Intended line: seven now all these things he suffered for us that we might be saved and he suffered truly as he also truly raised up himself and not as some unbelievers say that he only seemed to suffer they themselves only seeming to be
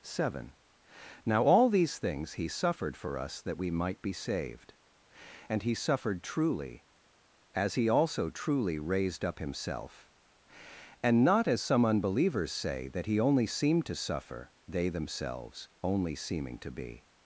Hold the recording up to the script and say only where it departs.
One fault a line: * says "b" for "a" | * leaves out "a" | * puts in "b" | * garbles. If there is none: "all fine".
all fine